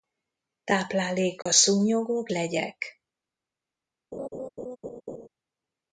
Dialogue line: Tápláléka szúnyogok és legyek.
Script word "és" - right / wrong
wrong